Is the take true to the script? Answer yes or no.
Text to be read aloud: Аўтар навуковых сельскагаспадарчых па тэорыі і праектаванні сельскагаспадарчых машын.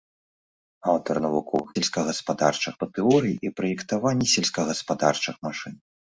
yes